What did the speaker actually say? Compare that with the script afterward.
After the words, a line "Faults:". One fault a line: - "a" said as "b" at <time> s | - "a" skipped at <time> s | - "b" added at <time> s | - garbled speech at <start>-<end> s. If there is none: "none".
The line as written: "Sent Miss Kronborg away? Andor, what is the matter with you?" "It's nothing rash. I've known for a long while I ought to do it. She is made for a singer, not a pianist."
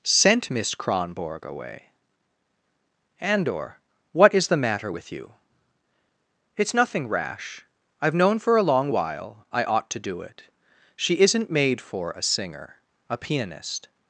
"Sent Miss Kronborg away? Andor, what is the matter with you?" "It's nothing rash. I've known for a long while I ought to do it. She isn't made for a singer, a pianist."
Faults:
- "is" said as "isn't" at 11.2 s
- "not" skipped at 12.8 s